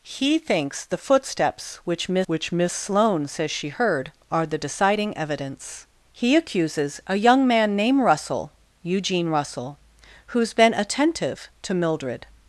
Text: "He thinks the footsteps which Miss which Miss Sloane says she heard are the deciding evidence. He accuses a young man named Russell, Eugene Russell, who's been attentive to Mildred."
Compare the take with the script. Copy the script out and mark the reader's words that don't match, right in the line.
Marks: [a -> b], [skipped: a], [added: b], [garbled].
"He thinks the footsteps which Miss which Miss Sloane says she heard are the deciding evidence. He accuses a young man named Russell, Eugene Russell, who's been attentive to Mildred."